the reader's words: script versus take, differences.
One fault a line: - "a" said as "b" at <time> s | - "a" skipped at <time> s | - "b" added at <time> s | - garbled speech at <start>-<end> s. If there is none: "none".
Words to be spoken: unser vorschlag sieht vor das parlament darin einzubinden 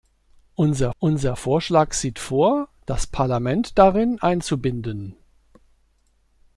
- "unser" added at 1.0 s